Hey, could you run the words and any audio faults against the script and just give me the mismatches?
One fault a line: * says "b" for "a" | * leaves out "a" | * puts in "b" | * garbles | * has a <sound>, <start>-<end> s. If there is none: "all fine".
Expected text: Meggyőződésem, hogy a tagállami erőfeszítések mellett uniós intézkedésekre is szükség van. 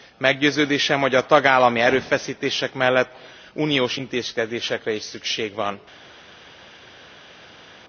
all fine